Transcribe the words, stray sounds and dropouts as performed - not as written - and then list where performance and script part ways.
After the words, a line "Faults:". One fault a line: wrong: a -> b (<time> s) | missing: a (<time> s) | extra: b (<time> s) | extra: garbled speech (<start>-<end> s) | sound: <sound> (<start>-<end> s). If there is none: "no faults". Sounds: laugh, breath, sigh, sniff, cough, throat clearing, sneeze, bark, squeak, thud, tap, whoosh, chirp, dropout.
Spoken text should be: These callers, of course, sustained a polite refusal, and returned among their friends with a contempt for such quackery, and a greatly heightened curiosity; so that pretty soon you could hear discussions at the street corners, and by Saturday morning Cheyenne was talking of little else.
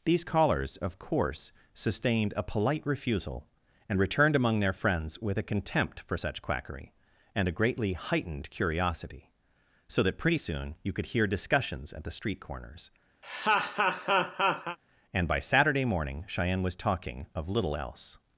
These callers, of course, sustained a polite refusal, and returned among their friends with a contempt for such quackery, and a greatly heightened curiosity; so that pretty soon you could hear discussions at the street corners, and by Saturday morning Cheyenne was talking of little else.
Faults:
sound: laugh (13.2-14.8 s)